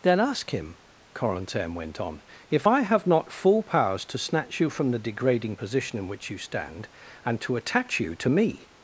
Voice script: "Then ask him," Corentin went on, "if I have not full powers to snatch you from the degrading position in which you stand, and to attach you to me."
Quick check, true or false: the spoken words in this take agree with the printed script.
true